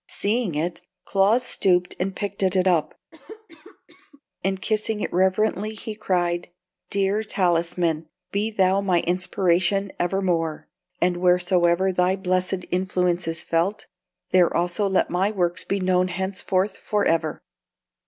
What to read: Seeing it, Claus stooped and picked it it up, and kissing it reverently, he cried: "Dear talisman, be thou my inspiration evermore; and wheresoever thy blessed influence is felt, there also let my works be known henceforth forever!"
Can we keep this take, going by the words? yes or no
yes